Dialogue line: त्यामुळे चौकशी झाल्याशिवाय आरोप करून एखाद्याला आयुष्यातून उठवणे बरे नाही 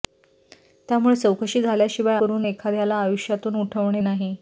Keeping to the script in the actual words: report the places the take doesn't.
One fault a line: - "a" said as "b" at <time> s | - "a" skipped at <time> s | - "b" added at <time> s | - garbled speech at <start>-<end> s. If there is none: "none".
- "आरोप" skipped at 2.2 s
- "बरे" skipped at 4.0 s